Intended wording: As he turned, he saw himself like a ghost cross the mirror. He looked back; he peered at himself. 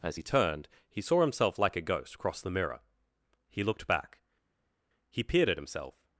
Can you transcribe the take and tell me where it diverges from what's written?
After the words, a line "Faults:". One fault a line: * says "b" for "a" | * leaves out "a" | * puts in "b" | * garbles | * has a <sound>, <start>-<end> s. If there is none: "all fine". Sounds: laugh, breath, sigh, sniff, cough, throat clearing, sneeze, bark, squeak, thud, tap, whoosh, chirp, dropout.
As he turned, he saw himself like a ghost cross the mirror. He looked back; he peered at himself.
Faults:
all fine